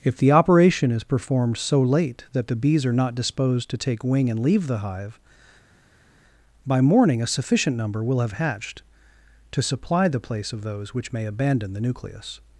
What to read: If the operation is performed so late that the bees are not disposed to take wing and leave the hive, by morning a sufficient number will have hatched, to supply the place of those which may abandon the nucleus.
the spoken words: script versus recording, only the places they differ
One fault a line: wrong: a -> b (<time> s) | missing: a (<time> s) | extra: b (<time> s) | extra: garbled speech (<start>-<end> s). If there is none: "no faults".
no faults